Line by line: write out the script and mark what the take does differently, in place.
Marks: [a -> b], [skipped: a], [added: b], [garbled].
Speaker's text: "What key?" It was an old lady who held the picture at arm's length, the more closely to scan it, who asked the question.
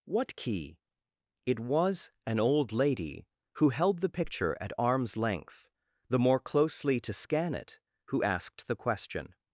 "What key?" It was an old lady who held the picture at arm's length, the more closely to scan it, who asked the question.